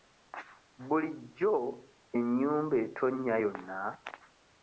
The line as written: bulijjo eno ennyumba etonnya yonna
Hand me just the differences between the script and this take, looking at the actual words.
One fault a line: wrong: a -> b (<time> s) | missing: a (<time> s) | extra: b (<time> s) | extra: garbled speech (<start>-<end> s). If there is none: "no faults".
missing: eno (1.5 s)